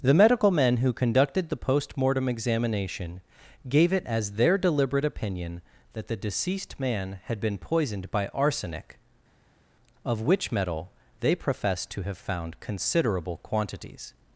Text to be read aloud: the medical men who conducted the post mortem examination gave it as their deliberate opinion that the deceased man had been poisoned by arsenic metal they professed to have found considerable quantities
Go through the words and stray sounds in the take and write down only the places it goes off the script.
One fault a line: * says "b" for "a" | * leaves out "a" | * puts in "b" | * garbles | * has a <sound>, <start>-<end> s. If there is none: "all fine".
* puts in "of which"